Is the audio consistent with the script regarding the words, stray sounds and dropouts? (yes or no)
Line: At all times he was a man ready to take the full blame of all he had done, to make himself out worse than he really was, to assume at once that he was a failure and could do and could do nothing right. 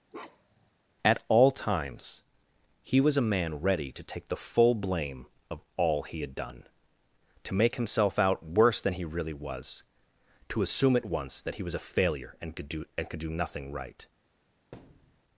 no